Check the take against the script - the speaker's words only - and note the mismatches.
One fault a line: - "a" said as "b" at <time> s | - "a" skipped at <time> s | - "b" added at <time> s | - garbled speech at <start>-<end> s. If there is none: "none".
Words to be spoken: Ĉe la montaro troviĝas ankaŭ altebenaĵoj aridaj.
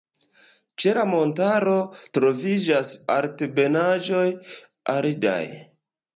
- "ankaŭ" skipped at 2.9 s